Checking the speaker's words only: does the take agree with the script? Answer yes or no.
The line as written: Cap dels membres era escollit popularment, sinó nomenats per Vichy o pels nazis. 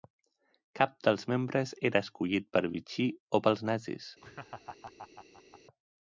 no